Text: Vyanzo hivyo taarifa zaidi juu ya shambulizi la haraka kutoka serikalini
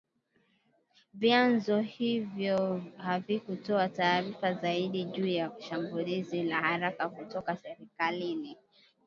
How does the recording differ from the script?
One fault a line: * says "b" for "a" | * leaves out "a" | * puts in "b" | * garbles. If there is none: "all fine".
* puts in "havikutoa"